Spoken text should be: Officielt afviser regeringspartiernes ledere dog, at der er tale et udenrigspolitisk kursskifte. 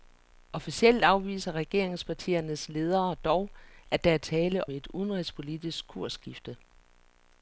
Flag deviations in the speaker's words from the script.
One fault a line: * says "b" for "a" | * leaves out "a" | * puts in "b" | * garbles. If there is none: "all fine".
all fine